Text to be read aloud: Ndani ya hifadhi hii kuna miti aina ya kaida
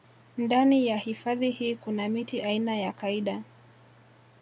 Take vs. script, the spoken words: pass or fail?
pass